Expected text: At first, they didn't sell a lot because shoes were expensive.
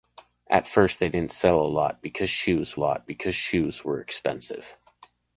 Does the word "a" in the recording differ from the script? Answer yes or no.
no